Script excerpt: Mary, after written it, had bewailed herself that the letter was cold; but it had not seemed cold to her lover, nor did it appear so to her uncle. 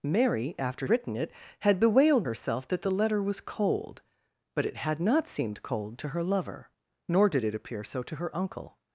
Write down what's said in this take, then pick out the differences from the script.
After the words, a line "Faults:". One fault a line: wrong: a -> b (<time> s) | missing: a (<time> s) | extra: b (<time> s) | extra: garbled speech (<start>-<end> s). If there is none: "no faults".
Mary, after written it, had bewailed herself that the letter was cold; but it had not seemed cold to her lover, nor did it appear so to her uncle.
Faults:
no faults